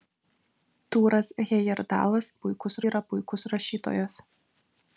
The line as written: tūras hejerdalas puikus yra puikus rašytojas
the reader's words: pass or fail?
pass